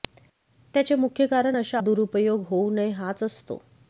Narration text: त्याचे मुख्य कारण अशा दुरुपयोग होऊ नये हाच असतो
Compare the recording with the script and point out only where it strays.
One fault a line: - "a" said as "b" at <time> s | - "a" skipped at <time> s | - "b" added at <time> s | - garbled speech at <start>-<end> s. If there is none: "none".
none